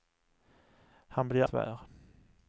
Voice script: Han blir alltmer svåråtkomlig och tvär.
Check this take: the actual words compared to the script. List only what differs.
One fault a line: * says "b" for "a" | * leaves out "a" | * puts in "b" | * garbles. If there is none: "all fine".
* leaves out "alltmer svåråtkomlig och"